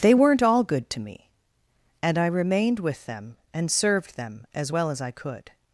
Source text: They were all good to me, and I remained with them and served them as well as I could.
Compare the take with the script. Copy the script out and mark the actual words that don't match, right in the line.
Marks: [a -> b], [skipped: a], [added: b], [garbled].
They [were -> weren't] all good to me, and I remained with them and served them as well as I could.